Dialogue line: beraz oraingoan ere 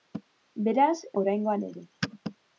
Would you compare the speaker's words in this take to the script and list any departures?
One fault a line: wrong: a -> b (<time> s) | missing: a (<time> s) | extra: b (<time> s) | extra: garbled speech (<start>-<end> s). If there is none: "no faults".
no faults